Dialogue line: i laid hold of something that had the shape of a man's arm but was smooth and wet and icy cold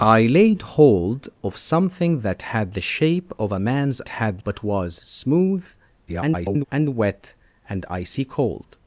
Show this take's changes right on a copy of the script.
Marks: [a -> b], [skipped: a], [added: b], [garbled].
i laid hold of something that had the shape of a man's [arm -> had] but was smooth [garbled] and wet and icy cold